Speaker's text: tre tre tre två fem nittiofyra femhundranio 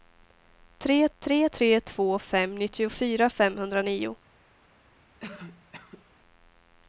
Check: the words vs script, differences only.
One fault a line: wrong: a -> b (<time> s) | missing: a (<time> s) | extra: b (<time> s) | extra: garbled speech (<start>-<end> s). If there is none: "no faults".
no faults